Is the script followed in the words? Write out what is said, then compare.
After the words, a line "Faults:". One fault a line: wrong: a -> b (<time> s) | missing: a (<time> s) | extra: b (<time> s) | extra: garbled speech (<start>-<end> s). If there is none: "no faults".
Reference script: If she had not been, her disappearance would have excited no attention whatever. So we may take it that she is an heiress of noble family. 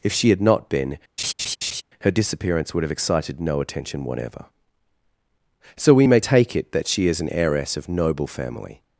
If she had not been, her disappearance would have excited no attention whatever. So we may take it that she is an heiress of noble family.
Faults:
no faults